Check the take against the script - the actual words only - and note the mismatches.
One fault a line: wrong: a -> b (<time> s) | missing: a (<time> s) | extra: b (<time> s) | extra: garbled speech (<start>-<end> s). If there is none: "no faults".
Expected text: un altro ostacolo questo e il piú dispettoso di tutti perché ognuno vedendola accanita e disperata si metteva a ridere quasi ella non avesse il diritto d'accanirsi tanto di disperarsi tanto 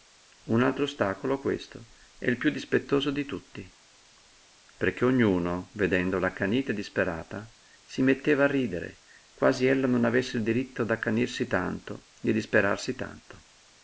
no faults